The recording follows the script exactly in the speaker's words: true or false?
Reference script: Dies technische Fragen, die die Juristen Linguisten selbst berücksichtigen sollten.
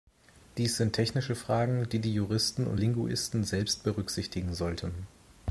false